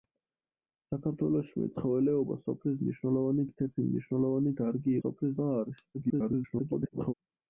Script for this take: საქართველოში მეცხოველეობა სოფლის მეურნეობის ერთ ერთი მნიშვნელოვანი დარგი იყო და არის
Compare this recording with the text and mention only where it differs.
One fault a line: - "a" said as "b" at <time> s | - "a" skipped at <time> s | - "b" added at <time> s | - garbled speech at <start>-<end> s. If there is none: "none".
- "მეურნეობის" said as "მნიშვნელოვანი" at 2.8 s
- "იყო" said as "სოფლის" at 5.0 s
- garbled speech at 5.9-7.1 s